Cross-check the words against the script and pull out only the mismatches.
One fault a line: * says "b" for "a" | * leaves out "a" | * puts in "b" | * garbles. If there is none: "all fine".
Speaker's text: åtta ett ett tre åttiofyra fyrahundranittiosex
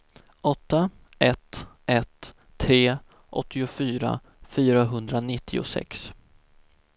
all fine